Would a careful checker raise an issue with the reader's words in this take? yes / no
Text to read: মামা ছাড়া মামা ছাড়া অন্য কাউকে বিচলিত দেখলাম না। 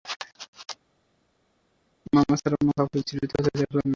yes